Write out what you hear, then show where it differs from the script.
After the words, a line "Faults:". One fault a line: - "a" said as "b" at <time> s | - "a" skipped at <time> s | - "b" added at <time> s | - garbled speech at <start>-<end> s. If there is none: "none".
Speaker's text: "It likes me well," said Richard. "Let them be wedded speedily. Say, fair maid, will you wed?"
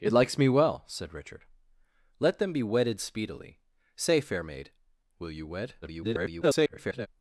"It likes me well," said Richard. "Let them be wedded speedily. Say, fair maid, will you wed?" [garbled]
Faults:
- garbled speech at 5.8-7.1 s